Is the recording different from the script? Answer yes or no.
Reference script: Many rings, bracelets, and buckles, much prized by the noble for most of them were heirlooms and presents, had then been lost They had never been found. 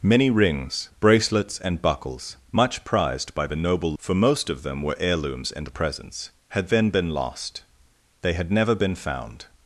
no